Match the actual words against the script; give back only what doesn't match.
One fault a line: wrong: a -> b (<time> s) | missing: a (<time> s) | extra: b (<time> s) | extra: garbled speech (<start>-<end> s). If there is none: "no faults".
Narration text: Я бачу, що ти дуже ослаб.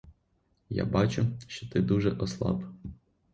no faults